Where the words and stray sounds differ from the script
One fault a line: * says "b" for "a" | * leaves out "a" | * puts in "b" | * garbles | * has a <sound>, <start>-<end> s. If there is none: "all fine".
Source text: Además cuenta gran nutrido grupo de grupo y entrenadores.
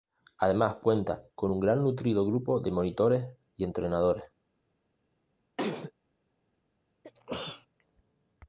* puts in "con un"
* says "monitores" for "grupo"
* has a sneeze, 5.6-5.9 s
* has a sneeze, 7.0-7.7 s